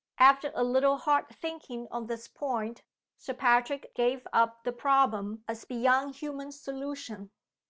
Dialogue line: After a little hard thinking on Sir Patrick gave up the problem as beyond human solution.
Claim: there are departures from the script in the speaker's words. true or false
true